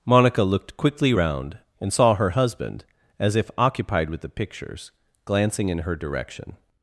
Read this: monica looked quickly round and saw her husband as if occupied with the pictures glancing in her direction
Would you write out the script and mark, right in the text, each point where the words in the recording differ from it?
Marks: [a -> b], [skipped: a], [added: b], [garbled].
monica looked quickly round and saw her husband as if occupied with the pictures glancing in her direction